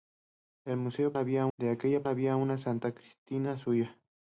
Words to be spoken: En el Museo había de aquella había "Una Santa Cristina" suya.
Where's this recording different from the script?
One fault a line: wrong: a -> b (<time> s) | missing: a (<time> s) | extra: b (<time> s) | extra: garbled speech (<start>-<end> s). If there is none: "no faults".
no faults